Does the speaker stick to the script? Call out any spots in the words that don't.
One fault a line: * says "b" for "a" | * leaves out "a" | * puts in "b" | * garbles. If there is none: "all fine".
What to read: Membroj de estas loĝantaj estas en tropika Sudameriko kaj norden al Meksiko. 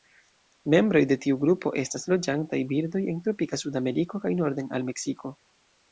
* puts in "tiu grupo"
* says "birdoj" for "estas"